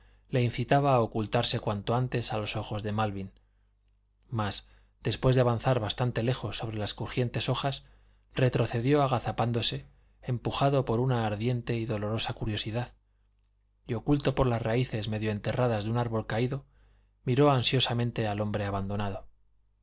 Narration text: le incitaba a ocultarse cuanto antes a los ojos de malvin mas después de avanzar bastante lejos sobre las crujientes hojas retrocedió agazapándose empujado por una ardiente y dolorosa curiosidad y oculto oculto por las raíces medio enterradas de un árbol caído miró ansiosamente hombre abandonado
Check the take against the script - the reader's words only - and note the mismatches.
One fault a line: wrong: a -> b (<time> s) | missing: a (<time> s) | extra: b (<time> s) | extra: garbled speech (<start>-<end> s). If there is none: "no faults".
missing: oculto (14.3 s)
extra: al (18.3 s)